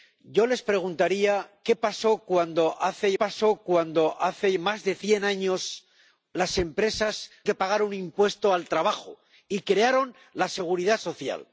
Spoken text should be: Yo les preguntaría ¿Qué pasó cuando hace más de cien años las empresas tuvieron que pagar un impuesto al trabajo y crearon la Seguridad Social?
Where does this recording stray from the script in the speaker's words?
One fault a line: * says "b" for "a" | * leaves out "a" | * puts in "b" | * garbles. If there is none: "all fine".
* puts in "pasó cuando hace"
* leaves out "tuvieron"